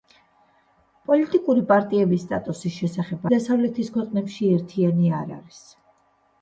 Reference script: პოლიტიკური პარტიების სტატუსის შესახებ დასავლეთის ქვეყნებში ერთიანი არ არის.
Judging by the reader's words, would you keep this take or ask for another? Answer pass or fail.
pass